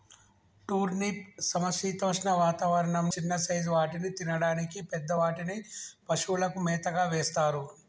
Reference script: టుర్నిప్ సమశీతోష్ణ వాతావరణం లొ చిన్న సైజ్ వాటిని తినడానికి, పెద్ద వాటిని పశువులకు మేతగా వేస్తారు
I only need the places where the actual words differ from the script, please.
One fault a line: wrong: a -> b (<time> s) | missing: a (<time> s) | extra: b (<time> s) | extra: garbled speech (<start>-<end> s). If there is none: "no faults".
missing: లొ (3.1 s)